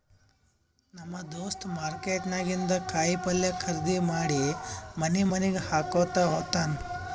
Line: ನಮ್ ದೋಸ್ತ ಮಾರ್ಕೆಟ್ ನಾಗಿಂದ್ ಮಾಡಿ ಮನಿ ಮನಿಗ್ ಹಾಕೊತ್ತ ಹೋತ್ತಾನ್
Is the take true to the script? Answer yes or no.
no